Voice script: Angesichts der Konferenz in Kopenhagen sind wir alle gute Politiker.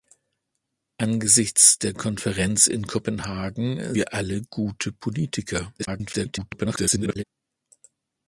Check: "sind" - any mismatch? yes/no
yes